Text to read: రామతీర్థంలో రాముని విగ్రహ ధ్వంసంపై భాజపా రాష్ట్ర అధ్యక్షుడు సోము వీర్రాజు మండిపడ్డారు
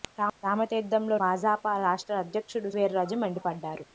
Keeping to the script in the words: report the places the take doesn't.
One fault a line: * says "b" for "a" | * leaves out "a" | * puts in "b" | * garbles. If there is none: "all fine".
* leaves out "రాముని విగ్రహ ధ్వంసంపై"
* leaves out "సోము"